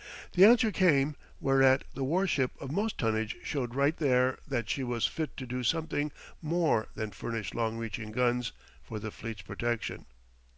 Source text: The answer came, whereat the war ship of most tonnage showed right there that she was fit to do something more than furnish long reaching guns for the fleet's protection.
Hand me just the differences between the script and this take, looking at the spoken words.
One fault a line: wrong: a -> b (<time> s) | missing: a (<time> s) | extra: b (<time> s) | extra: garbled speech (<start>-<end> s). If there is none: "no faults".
no faults